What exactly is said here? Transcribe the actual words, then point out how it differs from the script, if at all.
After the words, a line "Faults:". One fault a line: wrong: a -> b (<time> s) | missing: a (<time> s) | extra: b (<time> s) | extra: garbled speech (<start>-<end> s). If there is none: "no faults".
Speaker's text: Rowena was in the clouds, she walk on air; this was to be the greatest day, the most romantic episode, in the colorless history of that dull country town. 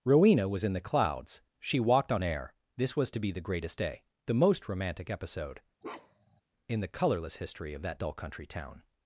Rowena was in the clouds, she walked on air; this was to be the greatest day, the most romantic episode, in the colorless history of that dull country town.
Faults:
wrong: walk -> walked (1.8 s)